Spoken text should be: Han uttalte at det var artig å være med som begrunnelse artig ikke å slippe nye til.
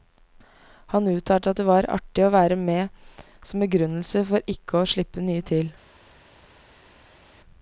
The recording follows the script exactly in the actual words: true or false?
false